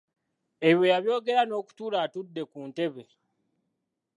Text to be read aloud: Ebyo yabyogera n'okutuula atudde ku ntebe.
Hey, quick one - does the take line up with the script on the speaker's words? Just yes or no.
yes